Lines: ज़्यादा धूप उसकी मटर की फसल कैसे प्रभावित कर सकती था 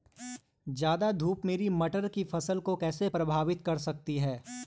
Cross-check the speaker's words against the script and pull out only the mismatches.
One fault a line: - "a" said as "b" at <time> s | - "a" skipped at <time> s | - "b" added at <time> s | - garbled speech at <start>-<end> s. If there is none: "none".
- "उसकी" said as "मेरी" at 1.4 s
- "को" added at 2.6 s
- "था" said as "है" at 4.2 s